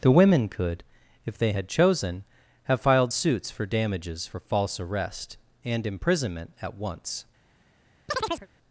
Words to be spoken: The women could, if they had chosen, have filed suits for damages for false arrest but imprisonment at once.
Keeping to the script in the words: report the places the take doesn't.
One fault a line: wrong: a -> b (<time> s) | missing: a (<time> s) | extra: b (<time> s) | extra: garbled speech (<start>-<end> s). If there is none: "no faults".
wrong: but -> and (5.6 s)